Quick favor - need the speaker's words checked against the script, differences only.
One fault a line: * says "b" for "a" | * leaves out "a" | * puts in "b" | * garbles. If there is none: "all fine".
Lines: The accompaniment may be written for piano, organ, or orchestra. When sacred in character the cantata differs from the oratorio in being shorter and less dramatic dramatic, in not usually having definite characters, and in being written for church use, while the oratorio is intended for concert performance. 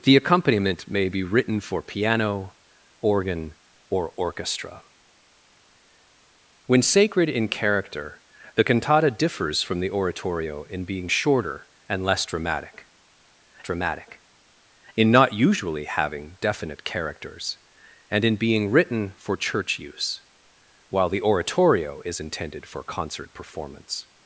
all fine